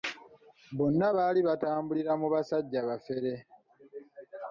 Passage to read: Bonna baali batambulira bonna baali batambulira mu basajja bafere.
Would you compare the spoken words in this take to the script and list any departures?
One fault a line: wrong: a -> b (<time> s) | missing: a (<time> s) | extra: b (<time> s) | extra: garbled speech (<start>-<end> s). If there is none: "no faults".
missing: bonna baali batambulira (2.1 s)